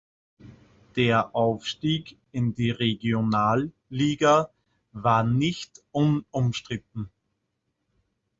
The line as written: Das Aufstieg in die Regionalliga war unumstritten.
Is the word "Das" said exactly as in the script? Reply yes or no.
no